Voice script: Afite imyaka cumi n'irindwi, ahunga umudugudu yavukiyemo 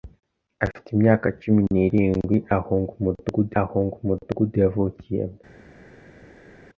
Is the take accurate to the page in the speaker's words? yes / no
no